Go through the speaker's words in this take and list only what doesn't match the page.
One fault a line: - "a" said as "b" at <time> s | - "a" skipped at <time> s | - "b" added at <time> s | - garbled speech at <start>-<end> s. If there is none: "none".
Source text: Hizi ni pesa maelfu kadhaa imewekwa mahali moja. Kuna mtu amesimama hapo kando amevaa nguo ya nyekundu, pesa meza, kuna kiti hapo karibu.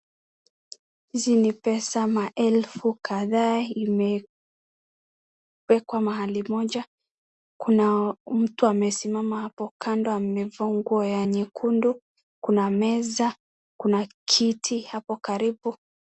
- "pesa" said as "kuna" at 12.4 s